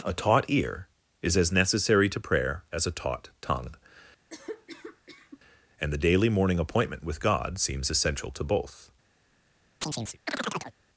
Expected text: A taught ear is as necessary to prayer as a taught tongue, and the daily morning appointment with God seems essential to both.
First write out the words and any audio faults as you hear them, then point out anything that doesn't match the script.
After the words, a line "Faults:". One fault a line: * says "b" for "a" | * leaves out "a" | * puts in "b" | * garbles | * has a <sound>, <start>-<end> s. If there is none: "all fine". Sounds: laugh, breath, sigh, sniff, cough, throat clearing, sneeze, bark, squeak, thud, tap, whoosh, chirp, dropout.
A taught ear is as necessary to prayer as a taught tongue, and the daily morning appointment with God seems essential to both.
Faults:
* has a cough, 4.3-5.4 s
* has a chirp, 9.8-10.8 s